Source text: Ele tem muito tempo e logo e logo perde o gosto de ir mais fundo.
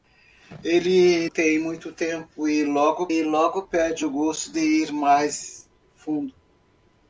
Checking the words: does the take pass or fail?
pass